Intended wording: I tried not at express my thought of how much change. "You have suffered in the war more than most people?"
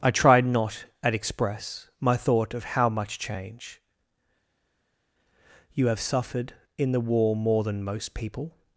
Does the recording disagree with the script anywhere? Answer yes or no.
no